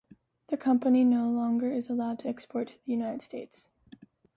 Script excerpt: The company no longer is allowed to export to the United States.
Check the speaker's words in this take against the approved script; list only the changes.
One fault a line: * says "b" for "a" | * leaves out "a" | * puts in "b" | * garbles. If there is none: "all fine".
all fine